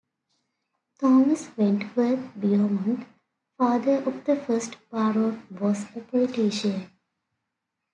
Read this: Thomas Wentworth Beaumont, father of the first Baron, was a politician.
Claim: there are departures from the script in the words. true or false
false